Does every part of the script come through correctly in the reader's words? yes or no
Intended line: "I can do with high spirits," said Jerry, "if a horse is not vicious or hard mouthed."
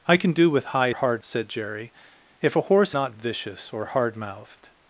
no